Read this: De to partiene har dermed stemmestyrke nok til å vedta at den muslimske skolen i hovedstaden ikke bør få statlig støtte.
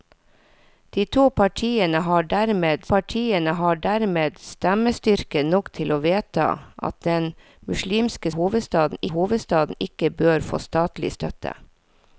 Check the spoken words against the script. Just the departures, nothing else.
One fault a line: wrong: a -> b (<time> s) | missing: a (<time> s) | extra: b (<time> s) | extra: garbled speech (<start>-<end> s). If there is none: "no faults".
extra: partiene har dermed (2.9 s)
wrong: skolen -> hovedstaden (8.4 s)